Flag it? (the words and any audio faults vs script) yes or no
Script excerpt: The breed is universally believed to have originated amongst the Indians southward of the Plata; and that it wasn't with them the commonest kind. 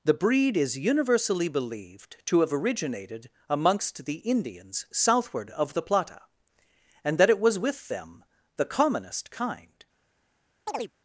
yes